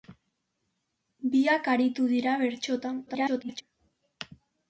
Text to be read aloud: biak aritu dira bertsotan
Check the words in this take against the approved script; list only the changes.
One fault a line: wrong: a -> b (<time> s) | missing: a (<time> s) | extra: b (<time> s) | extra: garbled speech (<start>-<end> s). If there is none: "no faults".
extra: garbled speech (3.1-3.6 s)